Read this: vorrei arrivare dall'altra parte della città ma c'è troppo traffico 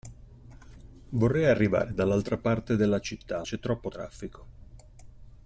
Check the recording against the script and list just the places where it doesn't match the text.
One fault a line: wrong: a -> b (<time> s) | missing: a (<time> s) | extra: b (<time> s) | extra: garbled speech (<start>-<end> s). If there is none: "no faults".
missing: ma (3.5 s)